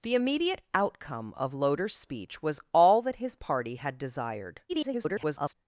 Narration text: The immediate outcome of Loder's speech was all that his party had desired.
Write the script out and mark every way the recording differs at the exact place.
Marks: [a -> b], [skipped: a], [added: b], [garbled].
The immediate outcome of Loder's speech was all that his party had desired. [garbled]